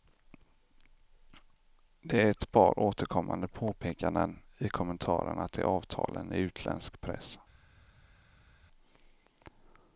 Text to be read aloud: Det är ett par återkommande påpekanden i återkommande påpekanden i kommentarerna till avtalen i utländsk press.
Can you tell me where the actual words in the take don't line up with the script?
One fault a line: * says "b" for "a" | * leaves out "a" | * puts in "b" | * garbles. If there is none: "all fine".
* leaves out "återkommande påpekanden i"